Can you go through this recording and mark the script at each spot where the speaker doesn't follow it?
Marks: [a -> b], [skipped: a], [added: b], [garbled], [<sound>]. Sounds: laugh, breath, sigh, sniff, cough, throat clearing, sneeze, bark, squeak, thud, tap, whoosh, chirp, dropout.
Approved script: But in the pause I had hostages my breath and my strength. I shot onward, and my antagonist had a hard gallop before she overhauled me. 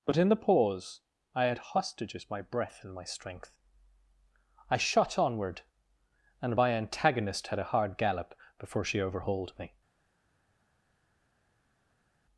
But in the pause I had hostages my breath and my strength. I shot onward, and my antagonist had a hard gallop before she overhauled me.